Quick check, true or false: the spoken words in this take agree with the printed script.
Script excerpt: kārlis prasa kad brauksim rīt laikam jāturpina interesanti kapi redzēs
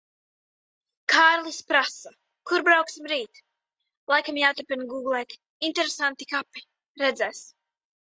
false